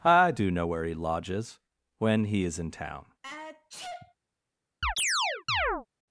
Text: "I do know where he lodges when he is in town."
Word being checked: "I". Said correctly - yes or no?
yes